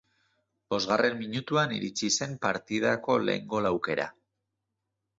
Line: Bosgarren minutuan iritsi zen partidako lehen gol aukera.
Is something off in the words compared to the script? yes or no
no